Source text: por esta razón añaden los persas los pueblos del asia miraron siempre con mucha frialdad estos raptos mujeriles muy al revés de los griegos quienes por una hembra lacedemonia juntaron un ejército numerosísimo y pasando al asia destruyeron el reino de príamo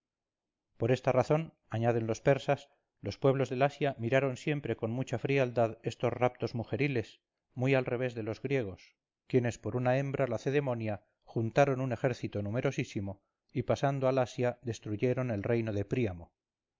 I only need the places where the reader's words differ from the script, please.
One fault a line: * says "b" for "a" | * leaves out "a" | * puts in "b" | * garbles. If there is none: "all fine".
all fine